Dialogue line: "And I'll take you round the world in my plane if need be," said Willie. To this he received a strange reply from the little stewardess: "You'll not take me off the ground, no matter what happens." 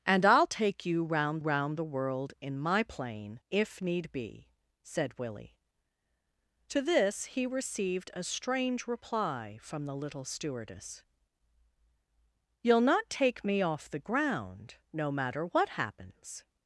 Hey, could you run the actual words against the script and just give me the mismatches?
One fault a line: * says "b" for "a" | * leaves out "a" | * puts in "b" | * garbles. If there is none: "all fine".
* puts in "round"